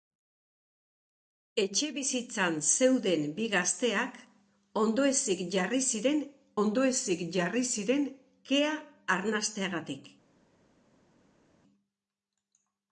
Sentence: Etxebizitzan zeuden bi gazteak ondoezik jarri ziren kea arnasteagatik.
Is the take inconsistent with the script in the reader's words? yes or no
yes